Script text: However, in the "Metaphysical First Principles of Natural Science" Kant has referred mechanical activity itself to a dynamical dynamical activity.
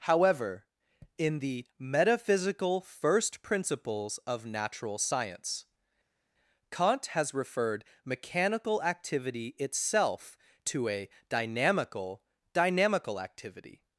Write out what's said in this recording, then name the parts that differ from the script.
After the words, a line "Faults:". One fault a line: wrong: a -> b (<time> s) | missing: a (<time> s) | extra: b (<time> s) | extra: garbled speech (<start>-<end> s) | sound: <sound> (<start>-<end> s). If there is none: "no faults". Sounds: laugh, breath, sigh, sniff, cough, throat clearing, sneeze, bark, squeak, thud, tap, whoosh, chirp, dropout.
However, in the "Metaphysical First Principles of Natural Science" Kant has referred mechanical activity itself to a dynamical dynamical activity.
Faults:
no faults